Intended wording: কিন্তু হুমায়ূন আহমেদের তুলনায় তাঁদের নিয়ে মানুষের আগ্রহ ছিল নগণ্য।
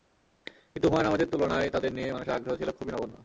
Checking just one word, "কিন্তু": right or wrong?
right